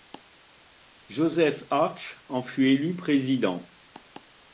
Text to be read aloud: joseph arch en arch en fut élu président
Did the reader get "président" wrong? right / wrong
right